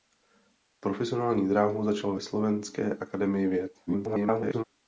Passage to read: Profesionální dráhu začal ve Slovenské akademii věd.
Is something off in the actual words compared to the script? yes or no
yes